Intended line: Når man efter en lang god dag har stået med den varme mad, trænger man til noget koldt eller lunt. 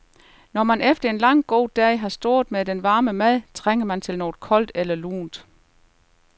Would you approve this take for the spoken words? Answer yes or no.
yes